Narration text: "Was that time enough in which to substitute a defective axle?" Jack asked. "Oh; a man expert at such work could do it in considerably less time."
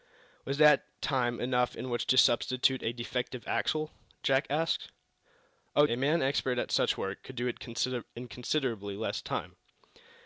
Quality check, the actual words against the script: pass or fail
pass